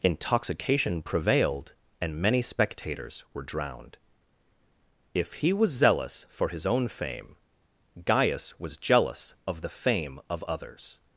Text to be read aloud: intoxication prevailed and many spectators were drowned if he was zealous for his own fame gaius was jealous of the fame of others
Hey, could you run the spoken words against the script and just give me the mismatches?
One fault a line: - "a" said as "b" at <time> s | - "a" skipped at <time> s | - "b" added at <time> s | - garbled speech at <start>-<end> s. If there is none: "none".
none